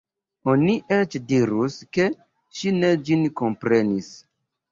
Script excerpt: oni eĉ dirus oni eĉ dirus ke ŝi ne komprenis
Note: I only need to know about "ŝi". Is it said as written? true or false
true